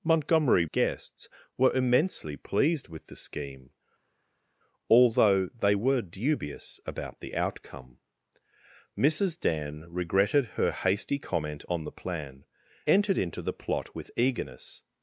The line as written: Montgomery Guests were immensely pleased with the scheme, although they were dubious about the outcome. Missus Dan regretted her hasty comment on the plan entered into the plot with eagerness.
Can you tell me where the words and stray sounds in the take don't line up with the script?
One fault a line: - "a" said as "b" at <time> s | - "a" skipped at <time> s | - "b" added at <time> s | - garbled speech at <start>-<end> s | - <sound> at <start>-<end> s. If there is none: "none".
none